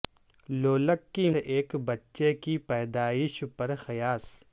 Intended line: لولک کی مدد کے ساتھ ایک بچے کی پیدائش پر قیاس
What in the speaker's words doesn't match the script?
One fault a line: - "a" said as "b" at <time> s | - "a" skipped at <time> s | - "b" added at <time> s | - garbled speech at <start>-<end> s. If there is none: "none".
- "مدد کے ساتھ" skipped at 1.3 s